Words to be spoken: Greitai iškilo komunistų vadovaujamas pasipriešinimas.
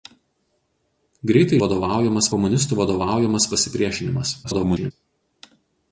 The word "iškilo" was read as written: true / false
false